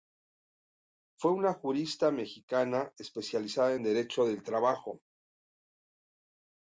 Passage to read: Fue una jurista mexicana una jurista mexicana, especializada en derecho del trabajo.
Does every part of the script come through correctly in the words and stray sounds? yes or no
no